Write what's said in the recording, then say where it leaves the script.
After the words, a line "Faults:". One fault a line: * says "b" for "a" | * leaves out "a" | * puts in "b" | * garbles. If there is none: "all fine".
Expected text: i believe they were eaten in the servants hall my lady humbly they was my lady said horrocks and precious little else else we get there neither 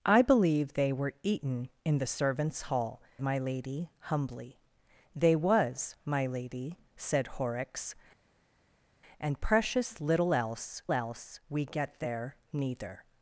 i believe they were eaten in the servants hall my lady humbly they was my lady said horrocks and precious little else else we get there neither
Faults:
all fine